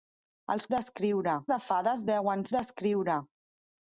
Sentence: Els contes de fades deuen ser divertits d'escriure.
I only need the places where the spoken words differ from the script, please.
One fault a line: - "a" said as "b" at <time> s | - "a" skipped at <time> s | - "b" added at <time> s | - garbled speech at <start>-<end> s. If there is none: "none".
- "contes" said as "d'escriure" at 0.7 s
- "ser divertits" skipped at 2.5 s